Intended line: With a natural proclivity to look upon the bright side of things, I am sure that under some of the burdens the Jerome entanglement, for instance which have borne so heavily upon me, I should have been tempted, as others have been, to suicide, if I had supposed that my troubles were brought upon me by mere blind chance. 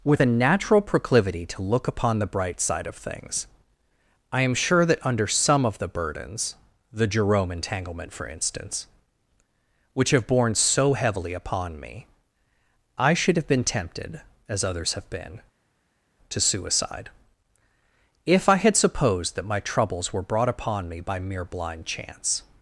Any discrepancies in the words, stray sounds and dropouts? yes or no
no